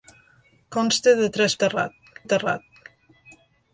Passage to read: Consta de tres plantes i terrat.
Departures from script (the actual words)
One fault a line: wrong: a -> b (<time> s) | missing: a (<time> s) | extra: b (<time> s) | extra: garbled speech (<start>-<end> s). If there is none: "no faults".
wrong: plantes -> terrat (1.7 s)